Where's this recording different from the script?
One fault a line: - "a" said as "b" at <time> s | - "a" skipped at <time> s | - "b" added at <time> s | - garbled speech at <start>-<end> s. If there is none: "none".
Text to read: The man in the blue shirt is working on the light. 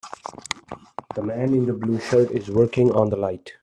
none